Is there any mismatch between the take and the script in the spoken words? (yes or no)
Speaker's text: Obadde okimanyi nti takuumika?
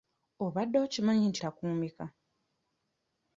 no